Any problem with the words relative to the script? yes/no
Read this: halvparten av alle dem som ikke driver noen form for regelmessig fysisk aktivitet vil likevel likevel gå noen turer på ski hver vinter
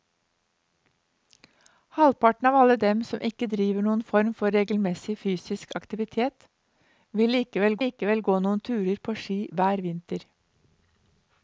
no